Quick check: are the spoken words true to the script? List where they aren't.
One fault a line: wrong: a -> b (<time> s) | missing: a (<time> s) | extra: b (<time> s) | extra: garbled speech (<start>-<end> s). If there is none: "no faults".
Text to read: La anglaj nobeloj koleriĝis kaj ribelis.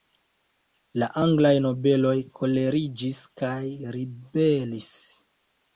no faults